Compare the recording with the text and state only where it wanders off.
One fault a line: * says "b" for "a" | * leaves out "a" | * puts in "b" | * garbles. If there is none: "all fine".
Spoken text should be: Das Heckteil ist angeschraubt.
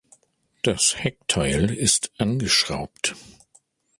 all fine